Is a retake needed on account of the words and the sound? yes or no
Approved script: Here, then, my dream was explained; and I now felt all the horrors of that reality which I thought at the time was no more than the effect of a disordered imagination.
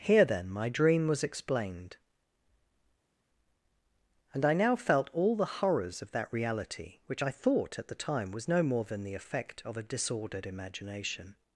no